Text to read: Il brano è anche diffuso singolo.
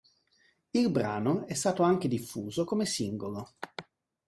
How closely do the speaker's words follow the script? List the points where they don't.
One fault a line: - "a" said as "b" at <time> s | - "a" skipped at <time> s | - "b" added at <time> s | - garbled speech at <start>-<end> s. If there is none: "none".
- "stato" added at 1.5 s
- "come" added at 2.6 s